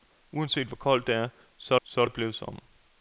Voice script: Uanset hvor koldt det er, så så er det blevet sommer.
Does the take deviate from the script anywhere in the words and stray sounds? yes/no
no